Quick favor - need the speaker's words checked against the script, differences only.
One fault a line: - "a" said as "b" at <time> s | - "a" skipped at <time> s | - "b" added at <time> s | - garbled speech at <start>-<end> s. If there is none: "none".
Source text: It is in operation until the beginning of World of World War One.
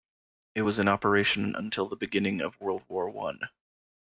- "is" said as "was" at 0.6 s
- "of World" skipped at 2.8 s